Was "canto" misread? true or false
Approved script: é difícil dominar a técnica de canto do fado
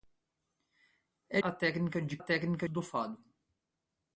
true